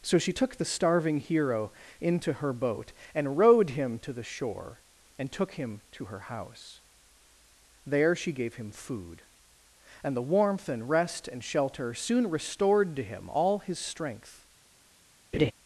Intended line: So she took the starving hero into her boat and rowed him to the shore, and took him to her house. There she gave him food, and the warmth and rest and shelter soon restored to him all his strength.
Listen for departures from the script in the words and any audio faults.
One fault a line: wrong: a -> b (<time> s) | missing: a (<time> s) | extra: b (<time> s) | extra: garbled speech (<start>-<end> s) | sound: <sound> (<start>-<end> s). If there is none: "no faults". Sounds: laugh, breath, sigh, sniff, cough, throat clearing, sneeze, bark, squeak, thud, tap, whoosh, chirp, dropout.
sound: laugh (15.3-15.5 s)